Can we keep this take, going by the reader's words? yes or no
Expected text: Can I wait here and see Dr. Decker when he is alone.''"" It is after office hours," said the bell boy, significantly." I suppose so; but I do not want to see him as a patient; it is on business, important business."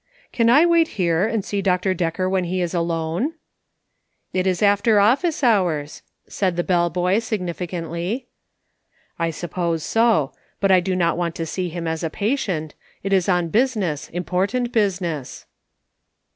yes